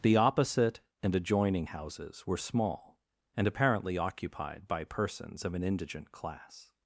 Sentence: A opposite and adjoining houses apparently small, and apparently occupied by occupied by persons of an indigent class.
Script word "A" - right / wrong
wrong